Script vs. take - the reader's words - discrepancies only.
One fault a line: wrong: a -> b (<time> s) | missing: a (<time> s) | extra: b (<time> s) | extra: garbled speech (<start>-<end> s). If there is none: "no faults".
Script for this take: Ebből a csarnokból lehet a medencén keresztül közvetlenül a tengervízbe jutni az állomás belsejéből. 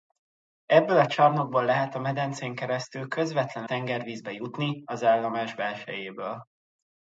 missing: a (3.7 s)